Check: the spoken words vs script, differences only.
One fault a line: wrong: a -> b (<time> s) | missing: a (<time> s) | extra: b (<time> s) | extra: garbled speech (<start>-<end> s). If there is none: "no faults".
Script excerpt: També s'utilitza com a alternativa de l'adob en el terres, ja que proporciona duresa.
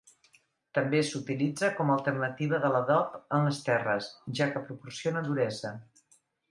wrong: el -> les (3.5 s)